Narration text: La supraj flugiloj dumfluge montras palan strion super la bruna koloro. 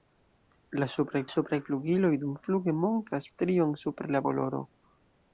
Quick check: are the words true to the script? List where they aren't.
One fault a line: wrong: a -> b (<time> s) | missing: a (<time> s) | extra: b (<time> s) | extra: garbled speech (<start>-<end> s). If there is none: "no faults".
extra: supraj (1.3 s)
missing: palan (3.3 s)
missing: bruna (4.2 s)